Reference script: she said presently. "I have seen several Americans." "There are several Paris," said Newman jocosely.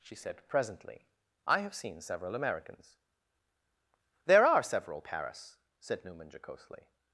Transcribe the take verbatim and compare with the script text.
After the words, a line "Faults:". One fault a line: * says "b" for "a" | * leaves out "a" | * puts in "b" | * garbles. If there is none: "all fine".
she said presently. "I have seen several Americans." "There are several Paris," said Newman jocosely.
Faults:
all fine